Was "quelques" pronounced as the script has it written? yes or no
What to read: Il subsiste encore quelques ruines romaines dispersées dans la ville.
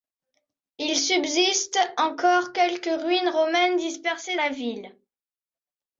yes